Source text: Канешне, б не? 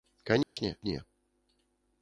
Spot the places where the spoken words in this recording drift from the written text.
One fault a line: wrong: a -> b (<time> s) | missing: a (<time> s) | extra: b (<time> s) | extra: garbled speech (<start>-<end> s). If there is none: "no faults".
no faults